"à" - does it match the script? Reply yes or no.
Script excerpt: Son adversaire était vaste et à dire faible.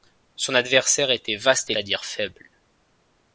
yes